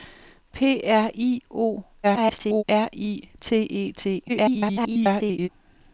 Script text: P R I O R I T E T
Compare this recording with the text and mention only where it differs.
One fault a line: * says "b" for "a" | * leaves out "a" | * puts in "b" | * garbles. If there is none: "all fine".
* garbles
* garbles